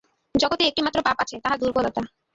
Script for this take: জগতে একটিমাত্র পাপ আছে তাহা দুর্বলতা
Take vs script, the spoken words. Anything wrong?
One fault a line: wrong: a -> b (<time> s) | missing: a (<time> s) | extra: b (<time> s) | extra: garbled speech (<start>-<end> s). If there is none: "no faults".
no faults